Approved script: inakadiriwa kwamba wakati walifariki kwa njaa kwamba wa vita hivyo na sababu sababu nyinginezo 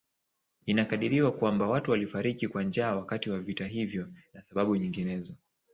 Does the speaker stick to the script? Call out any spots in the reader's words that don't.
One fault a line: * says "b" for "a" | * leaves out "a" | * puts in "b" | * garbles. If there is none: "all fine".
* says "watu" for "wakati"
* says "wakati" for "kwamba"
* leaves out "sababu"